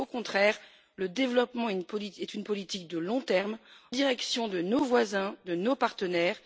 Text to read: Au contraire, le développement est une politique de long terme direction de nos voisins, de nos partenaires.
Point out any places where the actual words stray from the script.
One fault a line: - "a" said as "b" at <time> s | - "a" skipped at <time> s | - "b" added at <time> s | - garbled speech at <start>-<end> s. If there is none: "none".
none